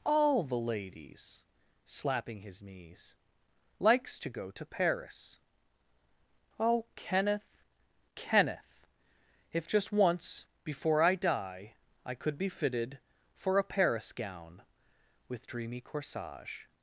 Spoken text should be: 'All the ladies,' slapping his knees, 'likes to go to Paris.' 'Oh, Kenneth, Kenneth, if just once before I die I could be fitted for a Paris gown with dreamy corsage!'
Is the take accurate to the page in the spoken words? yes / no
yes